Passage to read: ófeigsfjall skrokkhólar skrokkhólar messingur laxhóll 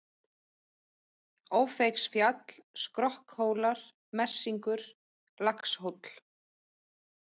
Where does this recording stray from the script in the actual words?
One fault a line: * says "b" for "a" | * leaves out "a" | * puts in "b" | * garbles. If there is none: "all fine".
* leaves out "skrokkhólar"